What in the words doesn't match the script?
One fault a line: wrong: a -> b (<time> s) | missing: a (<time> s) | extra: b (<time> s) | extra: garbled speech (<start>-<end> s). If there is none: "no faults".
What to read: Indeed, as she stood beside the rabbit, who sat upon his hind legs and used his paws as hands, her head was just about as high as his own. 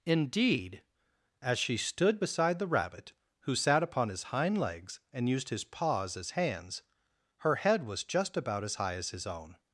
no faults